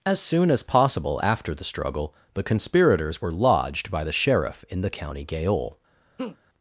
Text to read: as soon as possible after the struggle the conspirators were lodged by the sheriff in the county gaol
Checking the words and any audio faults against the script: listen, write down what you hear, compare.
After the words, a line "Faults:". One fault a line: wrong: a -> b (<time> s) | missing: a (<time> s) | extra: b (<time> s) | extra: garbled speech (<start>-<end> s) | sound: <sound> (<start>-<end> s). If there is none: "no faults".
as soon as possible after the struggle the conspirators were lodged by the sheriff in the county gaol
Faults:
sound: laugh (6.2-6.4 s)